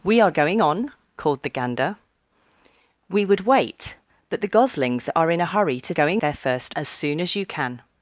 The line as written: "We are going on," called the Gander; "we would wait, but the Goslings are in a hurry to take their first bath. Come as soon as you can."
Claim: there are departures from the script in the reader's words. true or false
true